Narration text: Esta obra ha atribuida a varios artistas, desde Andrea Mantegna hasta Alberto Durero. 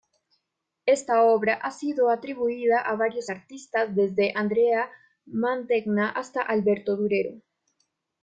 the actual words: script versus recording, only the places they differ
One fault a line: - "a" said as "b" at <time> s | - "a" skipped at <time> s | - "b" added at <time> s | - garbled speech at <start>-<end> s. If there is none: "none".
- "sido" added at 1.7 s